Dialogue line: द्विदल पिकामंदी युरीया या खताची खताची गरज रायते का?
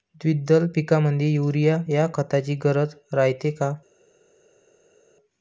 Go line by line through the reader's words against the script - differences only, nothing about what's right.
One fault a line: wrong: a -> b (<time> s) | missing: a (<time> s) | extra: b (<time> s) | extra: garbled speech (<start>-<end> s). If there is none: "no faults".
missing: खताची (2.6 s)